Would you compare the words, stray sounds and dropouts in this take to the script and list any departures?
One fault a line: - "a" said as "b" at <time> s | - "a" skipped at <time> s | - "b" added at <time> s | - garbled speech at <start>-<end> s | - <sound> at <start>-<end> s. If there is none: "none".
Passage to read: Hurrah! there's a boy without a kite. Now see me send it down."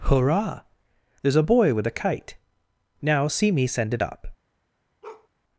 - "without" said as "with" at 1.7 s
- "down" said as "up" at 4.0 s
- bark at 5.0-5.3 s